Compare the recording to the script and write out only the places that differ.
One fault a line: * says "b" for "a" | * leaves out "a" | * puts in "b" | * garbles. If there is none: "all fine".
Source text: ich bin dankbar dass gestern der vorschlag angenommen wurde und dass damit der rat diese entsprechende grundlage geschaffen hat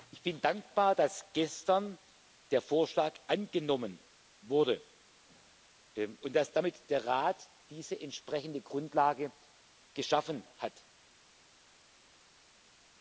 all fine